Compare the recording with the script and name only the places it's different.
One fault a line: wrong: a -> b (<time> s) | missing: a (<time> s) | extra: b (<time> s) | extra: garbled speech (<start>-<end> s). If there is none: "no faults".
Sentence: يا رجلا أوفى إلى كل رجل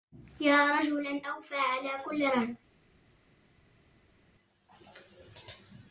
wrong: إلى -> على (1.5 s)